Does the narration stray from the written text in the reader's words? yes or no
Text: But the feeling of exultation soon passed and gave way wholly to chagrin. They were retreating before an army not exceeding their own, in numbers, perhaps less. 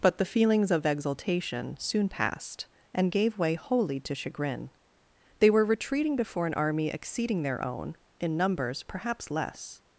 yes